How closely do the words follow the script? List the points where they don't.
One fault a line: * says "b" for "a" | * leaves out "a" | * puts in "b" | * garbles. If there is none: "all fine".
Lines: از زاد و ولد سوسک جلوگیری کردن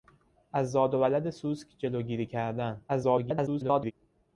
* garbles